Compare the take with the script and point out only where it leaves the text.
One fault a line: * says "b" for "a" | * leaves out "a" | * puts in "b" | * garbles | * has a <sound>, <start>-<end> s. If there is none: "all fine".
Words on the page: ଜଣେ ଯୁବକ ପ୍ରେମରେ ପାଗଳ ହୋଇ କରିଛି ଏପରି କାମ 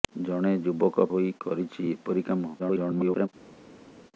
* leaves out "ପ୍ରେମରେ ପାଗଳ"
* garbles